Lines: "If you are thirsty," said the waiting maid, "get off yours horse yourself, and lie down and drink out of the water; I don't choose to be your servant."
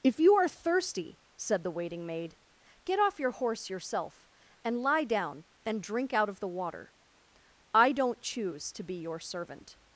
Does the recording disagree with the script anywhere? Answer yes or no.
yes